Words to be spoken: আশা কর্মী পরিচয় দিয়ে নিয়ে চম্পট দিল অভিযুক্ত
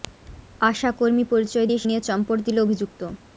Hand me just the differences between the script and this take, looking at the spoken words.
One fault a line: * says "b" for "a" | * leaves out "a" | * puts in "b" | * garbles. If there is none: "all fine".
all fine